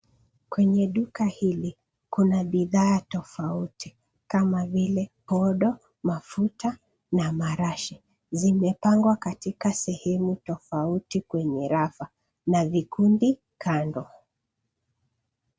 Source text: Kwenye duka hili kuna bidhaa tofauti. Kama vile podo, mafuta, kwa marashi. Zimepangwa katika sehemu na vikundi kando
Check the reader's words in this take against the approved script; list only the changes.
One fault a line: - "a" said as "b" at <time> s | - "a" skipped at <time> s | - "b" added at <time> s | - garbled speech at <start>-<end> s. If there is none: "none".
- "kwa" said as "na" at 7.1 s
- "tofauti kwenye rafa" added at 10.4 s